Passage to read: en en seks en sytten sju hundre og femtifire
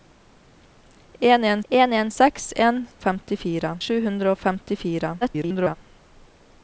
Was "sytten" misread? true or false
true